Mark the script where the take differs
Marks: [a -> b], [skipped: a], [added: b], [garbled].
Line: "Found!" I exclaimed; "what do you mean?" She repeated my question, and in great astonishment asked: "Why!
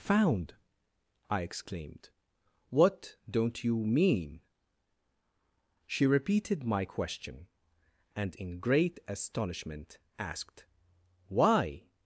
"Found!" I exclaimed; "what [do -> don't] you mean?" She repeated my question, and in great astonishment asked: "Why!